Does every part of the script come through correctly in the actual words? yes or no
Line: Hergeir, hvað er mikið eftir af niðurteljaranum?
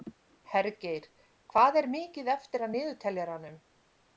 yes